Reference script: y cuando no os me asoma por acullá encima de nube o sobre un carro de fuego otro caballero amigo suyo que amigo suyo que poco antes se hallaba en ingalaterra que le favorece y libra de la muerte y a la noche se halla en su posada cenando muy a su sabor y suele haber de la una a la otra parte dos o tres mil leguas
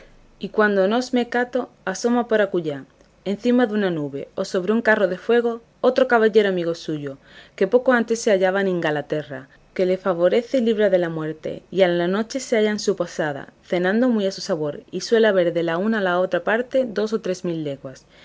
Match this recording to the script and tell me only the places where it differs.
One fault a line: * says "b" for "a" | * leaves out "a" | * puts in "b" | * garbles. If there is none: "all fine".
* puts in "cato"
* puts in "una"
* leaves out "amigo suyo que"